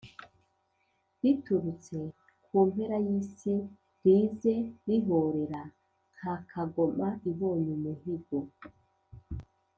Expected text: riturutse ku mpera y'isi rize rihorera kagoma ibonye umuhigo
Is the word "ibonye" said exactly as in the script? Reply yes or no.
yes